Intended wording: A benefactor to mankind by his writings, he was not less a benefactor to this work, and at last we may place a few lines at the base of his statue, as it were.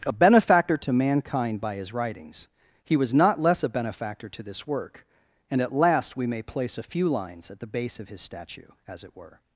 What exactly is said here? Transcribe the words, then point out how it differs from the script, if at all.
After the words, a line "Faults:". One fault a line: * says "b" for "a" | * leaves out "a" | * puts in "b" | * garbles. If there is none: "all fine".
A benefactor to mankind by his writings, he was not less a benefactor to this work, and at last we may place a few lines at the base of his statue, as it were.
Faults:
all fine